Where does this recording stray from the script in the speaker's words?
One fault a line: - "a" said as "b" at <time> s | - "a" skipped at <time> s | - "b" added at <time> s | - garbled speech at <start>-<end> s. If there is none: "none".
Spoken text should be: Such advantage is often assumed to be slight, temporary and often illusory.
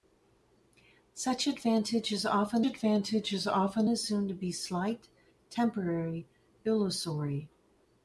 - "advantage is often" added at 2.6 s
- "and often" skipped at 6.3 s